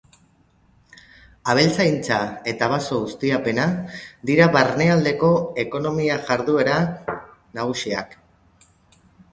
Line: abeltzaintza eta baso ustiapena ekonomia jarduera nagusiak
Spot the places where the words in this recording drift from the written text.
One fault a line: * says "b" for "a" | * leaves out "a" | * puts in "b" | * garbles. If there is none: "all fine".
* puts in "dira barnealdeko"